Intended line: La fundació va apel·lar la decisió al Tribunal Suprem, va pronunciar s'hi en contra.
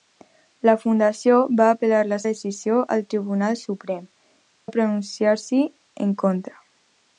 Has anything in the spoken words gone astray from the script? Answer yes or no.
no